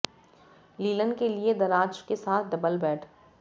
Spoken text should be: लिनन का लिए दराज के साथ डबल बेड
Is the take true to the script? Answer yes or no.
no